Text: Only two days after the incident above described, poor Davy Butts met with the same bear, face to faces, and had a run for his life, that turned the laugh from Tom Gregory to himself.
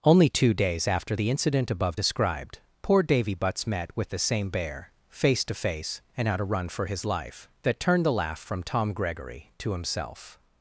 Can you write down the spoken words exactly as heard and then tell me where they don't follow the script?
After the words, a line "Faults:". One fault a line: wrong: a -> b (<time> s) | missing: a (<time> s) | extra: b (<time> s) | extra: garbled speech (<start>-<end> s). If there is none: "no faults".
Only two days after the incident above described, poor Davy Butts met with the same bear, face to face, and had a run for his life, that turned the laugh from Tom Gregory to himself.
Faults:
wrong: faces -> face (5.5 s)